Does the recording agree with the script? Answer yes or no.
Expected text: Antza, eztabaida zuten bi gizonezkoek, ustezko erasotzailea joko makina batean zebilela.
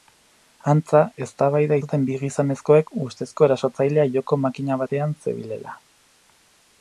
yes